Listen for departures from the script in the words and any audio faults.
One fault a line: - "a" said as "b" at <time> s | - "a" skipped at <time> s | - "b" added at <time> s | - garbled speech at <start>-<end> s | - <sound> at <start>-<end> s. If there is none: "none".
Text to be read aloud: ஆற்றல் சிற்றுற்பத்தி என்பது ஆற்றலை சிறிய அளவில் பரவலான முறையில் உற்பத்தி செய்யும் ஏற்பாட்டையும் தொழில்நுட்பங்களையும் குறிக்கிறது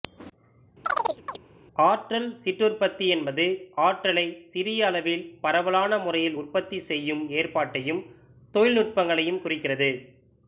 - chirp at 0.8-1.4 s